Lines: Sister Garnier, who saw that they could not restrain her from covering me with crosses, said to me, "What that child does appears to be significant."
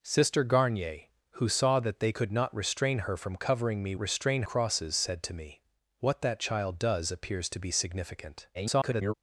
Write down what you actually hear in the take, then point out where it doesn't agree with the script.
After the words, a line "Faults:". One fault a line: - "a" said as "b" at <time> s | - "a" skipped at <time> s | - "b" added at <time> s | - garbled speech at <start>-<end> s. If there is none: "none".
Sister Garnier, who saw that they could not restrain her from covering me restrain crosses, said to me, "What that child does appears to be significant." [garbled]
Faults:
- "with" said as "restrain" at 4.0 s
- garbled speech at 8.5-9.1 s